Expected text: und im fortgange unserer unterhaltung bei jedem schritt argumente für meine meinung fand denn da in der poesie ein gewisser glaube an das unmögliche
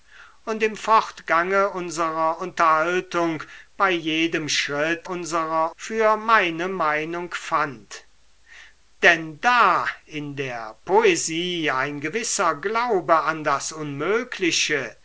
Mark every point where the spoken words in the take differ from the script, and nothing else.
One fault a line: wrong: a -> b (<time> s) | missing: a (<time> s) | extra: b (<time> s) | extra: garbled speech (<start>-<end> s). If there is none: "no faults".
wrong: argumente -> unserer (5.0 s)